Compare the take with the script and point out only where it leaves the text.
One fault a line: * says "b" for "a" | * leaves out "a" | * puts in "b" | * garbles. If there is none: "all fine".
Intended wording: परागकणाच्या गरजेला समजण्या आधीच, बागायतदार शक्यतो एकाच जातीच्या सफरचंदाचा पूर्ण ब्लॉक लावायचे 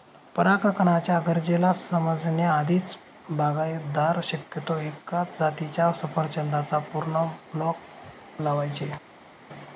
all fine